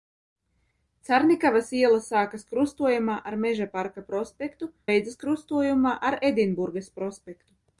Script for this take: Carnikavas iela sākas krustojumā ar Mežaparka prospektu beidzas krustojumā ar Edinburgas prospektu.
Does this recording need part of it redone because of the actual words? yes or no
no